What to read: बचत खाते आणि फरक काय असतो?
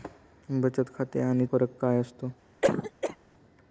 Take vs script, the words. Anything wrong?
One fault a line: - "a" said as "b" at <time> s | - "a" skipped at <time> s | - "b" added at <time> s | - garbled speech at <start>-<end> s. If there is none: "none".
none